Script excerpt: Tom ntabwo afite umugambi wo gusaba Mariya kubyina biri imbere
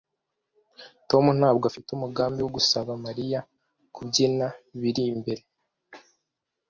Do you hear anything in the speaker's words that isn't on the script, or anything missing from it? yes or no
no